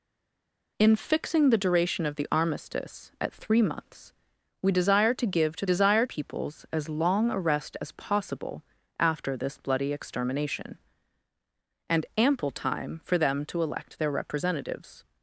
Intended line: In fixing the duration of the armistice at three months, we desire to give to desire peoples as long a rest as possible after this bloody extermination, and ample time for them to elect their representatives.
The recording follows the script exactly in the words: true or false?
true